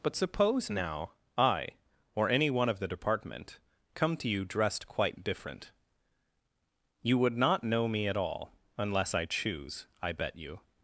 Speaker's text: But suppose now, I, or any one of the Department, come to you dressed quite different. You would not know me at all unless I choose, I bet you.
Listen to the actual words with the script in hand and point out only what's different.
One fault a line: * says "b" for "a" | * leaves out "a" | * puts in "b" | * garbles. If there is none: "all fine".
all fine